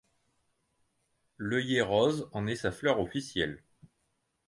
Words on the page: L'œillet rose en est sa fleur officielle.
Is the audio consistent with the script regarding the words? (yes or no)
yes